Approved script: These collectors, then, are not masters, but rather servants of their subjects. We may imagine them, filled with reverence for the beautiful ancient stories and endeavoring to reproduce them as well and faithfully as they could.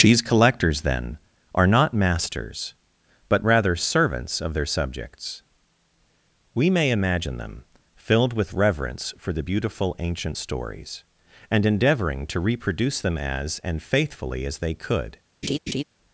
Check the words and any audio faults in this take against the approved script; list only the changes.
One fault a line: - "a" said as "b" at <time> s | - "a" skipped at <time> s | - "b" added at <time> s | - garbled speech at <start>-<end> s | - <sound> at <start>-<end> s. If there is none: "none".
- "well" skipped at 13.6 s
- laugh at 15.4-15.8 s